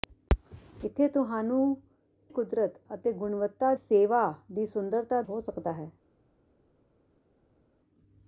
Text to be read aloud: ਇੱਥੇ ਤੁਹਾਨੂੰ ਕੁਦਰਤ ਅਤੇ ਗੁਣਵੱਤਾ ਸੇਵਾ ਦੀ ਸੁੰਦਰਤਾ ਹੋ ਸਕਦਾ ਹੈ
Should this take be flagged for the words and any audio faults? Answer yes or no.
no